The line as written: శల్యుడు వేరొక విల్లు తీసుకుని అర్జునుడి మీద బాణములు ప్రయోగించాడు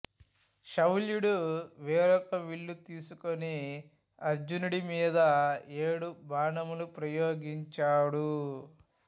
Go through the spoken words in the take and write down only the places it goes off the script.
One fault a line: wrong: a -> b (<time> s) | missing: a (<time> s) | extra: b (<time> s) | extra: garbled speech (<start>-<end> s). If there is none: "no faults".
extra: ఏడు (5.8 s)